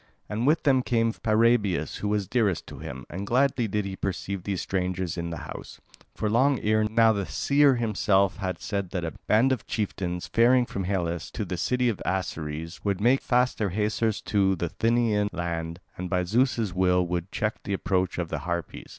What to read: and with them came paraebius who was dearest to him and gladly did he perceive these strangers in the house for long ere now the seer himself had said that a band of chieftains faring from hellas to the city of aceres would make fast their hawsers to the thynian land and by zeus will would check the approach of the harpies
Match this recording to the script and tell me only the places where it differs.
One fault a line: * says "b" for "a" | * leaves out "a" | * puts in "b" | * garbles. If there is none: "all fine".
all fine